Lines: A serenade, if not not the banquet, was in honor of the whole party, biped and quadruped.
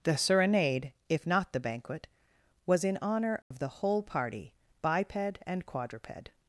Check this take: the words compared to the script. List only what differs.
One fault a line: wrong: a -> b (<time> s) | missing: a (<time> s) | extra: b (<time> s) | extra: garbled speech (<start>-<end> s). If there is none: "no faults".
wrong: A -> The (0.0 s)
missing: not (1.5 s)